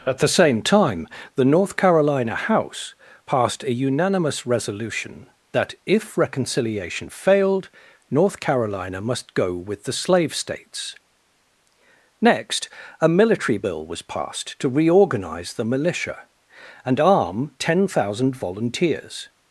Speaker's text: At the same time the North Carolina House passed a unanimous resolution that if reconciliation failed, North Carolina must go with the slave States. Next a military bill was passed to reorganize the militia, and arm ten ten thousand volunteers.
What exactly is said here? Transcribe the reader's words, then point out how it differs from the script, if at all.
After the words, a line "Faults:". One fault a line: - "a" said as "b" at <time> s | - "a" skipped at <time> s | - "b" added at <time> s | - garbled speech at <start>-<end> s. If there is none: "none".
At the same time the North Carolina House passed a unanimous resolution that if reconciliation failed, North Carolina must go with the slave States. Next a military bill was passed to reorganize the militia, and arm ten thousand volunteers.
Faults:
- "ten" skipped at 17.9 s